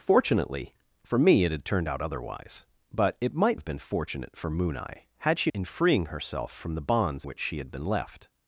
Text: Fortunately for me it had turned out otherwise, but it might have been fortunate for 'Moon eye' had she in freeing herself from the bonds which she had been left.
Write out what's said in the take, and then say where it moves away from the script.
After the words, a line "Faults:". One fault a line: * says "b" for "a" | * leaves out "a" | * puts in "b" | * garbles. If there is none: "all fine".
Fortunately for me it had turned out otherwise, but it might have been fortunate for 'Moon eye' had she in freeing herself from the bonds which she had been left.
Faults:
all fine